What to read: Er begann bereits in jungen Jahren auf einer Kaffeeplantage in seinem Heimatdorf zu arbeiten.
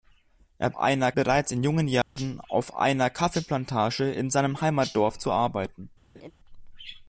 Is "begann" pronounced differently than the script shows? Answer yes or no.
yes